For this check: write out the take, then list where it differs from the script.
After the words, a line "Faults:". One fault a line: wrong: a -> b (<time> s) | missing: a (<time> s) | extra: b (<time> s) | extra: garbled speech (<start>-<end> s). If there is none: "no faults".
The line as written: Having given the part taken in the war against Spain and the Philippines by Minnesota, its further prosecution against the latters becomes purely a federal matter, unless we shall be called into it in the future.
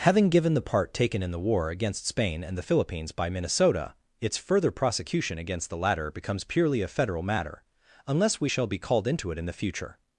Having given the part taken in the war against Spain and the Philippines by Minnesota, its further prosecution against the latter becomes purely a federal matter, unless we shall be called into it in the future.
Faults:
wrong: latters -> latter (5.8 s)